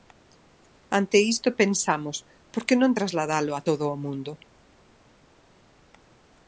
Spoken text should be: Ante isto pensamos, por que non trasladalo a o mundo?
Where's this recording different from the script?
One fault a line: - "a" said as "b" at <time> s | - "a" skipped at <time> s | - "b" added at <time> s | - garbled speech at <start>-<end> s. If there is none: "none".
- "todo" added at 3.7 s